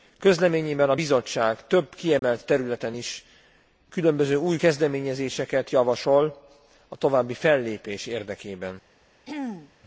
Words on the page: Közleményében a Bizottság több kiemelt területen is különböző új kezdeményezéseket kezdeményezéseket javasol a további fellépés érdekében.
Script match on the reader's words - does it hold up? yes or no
no